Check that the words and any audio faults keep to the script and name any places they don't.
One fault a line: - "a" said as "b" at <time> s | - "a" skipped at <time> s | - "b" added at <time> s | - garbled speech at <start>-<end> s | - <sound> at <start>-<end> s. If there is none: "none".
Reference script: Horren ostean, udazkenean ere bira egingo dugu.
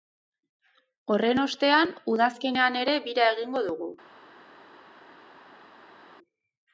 none